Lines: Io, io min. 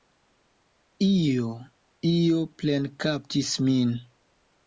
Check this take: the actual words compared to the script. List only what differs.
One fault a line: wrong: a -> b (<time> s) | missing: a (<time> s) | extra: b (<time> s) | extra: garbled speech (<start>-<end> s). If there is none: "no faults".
extra: plenkaptis (2.6 s)